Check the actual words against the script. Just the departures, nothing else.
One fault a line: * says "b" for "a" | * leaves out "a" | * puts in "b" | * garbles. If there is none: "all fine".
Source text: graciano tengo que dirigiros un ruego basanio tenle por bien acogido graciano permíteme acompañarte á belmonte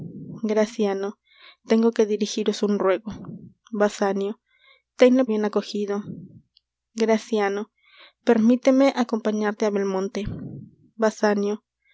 * leaves out "por"